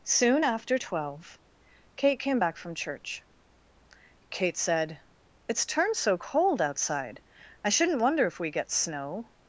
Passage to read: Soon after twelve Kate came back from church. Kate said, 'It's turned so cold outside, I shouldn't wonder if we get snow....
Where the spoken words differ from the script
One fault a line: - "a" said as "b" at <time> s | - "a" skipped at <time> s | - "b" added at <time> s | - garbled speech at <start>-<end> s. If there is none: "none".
none